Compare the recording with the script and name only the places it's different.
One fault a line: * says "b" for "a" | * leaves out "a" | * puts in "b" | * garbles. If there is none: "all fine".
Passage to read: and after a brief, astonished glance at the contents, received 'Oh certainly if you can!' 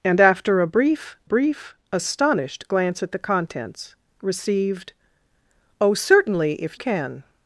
* puts in "brief"
* leaves out "you"